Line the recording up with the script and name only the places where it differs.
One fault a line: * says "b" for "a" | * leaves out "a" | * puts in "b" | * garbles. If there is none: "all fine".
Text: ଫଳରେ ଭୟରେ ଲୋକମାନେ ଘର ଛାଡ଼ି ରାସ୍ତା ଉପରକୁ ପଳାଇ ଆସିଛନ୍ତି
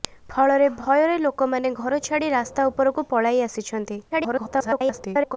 * garbles